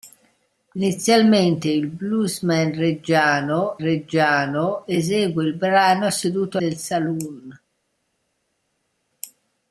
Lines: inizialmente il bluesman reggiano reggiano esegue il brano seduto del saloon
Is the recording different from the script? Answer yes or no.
no